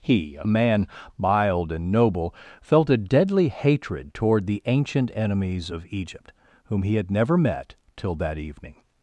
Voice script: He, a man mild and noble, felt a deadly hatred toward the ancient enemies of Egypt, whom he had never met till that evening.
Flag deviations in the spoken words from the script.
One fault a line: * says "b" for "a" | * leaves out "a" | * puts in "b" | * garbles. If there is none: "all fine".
all fine